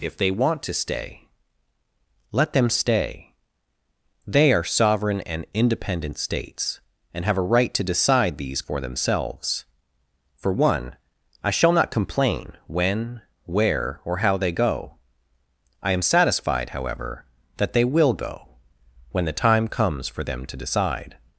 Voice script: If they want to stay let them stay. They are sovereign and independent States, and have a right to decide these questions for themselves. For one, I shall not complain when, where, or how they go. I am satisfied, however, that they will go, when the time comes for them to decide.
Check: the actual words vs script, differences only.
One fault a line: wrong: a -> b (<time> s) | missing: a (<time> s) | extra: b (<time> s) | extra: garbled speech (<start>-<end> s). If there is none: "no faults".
missing: questions (8.6 s)